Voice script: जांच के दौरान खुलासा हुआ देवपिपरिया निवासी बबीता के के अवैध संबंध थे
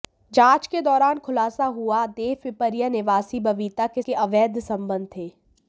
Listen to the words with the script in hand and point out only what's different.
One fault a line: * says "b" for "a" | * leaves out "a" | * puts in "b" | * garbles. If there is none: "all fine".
all fine